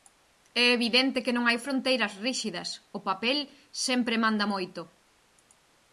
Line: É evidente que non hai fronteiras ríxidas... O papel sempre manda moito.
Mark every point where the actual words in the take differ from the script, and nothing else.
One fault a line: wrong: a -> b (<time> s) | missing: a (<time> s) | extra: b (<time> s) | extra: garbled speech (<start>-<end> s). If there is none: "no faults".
no faults